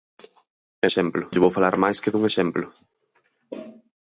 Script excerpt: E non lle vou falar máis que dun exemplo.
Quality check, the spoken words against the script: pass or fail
fail